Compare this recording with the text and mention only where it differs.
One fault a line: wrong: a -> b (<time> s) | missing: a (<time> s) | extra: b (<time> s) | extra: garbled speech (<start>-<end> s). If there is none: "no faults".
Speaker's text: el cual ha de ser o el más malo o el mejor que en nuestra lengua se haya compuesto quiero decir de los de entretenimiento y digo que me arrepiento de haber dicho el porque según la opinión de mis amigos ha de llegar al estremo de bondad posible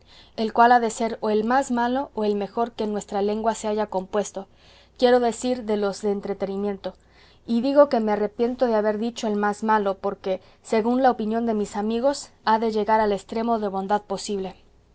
extra: más malo (9.4 s)